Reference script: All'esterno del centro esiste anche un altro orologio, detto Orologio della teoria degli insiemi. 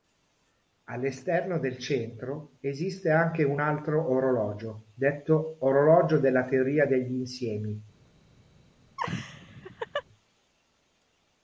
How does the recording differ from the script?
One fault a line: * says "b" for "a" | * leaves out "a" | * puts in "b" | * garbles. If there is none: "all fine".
all fine